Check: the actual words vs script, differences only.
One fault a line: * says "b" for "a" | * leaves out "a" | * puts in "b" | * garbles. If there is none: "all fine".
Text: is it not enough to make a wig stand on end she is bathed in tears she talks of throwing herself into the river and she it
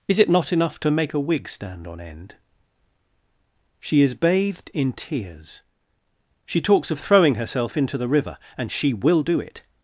* puts in "will do"